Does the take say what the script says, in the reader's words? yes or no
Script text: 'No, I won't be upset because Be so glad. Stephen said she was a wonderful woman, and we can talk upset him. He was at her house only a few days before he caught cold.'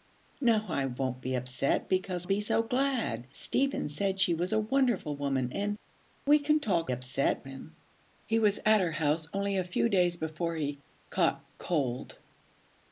yes